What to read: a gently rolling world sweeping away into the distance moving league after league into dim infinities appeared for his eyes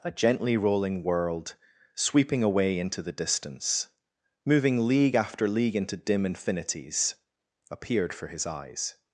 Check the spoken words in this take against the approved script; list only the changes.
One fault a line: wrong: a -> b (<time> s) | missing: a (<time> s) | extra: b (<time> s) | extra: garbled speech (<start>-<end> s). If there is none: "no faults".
no faults